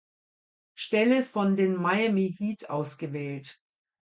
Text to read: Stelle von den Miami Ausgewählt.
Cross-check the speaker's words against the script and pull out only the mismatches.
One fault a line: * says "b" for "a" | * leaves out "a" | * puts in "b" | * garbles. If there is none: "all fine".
* puts in "Heat"